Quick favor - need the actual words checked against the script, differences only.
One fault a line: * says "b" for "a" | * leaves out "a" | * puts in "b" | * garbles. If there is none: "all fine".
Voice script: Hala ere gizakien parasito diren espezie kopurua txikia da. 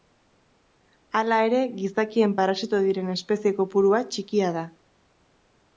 all fine